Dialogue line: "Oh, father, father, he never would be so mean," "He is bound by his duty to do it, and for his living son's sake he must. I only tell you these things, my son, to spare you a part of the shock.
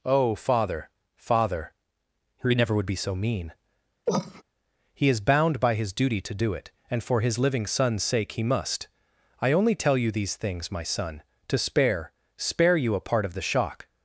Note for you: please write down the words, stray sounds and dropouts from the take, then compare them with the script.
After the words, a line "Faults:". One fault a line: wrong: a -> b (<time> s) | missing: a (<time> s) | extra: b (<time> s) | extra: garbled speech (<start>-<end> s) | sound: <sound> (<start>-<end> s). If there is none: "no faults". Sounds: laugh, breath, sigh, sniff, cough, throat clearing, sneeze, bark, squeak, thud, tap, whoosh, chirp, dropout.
"Oh, father, father, he never would be so mean," "He is bound by his duty to do it, and for his living son's sake he must. I only tell you these things, my son, to spare spare you a part of the shock.
Faults:
sound: cough (4.1-4.4 s)
extra: spare (12.4 s)